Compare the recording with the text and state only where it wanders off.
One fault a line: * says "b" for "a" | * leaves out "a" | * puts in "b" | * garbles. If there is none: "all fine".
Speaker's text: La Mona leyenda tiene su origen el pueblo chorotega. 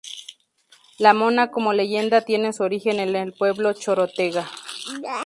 * puts in "como"
* puts in "en"